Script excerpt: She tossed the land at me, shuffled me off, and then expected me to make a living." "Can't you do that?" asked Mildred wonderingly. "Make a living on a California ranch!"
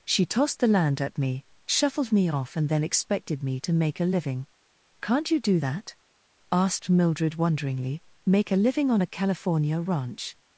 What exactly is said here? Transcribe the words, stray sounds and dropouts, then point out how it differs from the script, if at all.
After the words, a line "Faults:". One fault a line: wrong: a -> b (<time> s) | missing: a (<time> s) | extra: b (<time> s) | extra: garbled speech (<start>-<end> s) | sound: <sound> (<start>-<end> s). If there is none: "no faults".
She tossed the land at me, shuffled me off, and then expected me to make a living." "Can't you do that?" asked Mildred wonderingly. "Make a living on a California ranch!"
Faults:
no faults